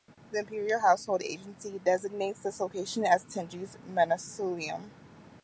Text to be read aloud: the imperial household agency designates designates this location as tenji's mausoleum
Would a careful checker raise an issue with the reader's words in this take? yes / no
yes